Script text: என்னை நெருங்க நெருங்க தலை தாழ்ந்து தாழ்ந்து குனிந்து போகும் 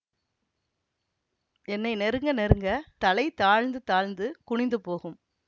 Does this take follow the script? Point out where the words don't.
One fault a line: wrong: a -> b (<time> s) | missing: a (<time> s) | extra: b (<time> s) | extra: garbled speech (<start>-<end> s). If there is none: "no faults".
no faults